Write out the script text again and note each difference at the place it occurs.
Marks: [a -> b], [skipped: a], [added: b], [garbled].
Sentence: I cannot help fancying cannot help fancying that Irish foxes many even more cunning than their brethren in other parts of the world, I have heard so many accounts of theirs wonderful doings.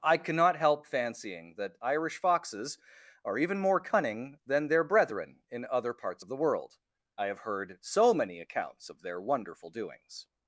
I cannot help fancying [skipped: cannot help fancying] that Irish foxes [many -> are] even more cunning than their brethren in other parts of the world, I have heard so many accounts of [theirs -> their] wonderful doings.